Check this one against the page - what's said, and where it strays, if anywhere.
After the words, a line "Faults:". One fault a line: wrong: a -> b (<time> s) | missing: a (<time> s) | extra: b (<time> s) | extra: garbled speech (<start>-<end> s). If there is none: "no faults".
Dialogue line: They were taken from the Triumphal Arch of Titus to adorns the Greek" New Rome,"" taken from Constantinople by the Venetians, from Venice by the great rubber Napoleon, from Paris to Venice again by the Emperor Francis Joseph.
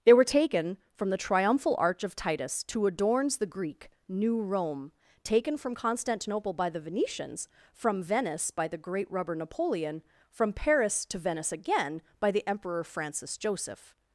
They were taken from the Triumphal Arch of Titus to adorns the Greek" New Rome,"" taken from Constantinople by the Venetians, from Venice by the great rubber Napoleon, from Paris to Venice again by the Emperor Francis Joseph.
Faults:
no faults